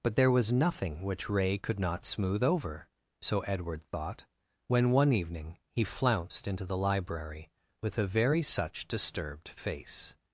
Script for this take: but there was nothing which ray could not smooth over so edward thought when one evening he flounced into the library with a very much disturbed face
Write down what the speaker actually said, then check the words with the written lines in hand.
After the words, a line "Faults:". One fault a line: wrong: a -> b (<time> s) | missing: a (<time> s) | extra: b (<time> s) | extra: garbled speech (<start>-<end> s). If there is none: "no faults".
but there was nothing which ray could not smooth over so edward thought when one evening he flounced into the library with a very such disturbed face
Faults:
wrong: much -> such (8.4 s)